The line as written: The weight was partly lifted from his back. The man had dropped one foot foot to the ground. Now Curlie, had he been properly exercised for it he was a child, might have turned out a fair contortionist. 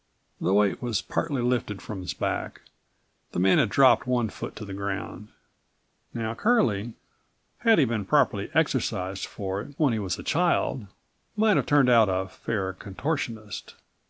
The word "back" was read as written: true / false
true